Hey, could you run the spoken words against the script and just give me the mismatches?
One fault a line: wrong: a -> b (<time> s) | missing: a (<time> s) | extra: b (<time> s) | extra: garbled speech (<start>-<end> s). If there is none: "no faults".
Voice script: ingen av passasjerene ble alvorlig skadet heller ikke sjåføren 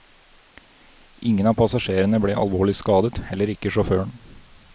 no faults